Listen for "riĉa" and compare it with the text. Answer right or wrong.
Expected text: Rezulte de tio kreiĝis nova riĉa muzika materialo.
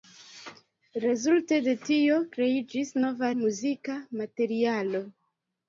wrong